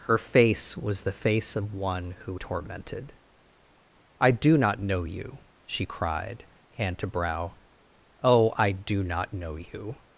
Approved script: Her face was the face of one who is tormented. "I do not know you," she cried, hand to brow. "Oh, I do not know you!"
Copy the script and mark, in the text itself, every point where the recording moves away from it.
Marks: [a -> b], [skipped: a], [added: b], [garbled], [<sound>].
Her face was the face of one who [skipped: is] tormented. "I do not know you," she cried, hand to brow. "Oh, I do not know you!"